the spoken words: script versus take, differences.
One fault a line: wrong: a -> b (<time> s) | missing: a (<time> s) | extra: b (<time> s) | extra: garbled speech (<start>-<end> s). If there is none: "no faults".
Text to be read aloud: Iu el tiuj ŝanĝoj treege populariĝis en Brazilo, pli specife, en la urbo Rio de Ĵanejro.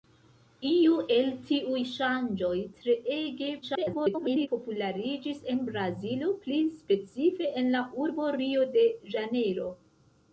extra: garbled speech (3.6-4.5 s)